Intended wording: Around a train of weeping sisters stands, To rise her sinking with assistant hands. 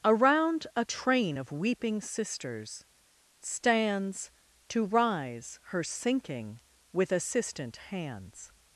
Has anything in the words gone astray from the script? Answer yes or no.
no